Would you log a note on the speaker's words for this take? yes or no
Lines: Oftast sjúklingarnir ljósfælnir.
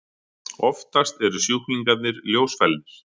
yes